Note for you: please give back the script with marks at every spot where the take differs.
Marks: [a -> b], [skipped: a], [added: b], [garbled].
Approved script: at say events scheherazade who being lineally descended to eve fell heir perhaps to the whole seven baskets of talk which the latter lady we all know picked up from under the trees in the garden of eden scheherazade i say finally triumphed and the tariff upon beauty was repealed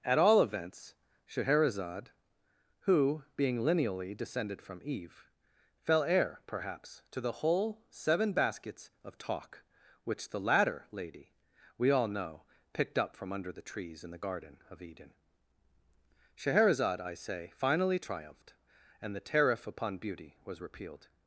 at [say -> all] events scheherazade who being lineally descended [to -> from] eve fell heir perhaps to the whole seven baskets of talk which the latter lady we all know picked up from under the trees in the garden of eden scheherazade i say finally triumphed and the tariff upon beauty was repealed